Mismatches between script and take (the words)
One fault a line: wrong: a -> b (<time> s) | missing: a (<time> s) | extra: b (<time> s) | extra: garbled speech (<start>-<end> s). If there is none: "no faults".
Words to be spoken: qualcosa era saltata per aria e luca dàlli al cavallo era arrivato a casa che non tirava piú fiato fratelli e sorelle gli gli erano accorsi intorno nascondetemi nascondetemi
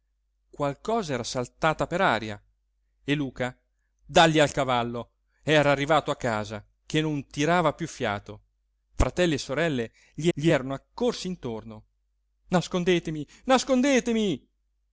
no faults